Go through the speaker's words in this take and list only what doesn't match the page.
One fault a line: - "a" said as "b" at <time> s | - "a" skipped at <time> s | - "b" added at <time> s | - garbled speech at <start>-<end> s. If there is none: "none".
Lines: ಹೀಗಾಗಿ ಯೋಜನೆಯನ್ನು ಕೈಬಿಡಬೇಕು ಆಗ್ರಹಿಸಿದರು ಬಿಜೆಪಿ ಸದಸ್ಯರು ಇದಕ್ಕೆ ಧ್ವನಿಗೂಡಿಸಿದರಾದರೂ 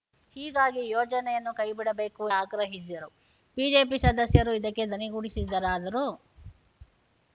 none